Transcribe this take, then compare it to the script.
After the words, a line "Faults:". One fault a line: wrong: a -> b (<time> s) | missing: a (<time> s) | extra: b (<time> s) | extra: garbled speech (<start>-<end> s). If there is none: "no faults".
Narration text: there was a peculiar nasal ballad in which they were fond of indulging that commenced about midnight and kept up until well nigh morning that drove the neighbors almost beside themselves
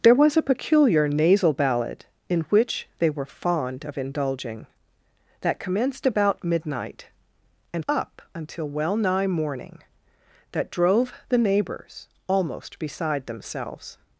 there was a peculiar nasal ballad in which they were fond of indulging that commenced about midnight and up until well nigh morning that drove the neighbors almost beside themselves
Faults:
missing: kept (7.8 s)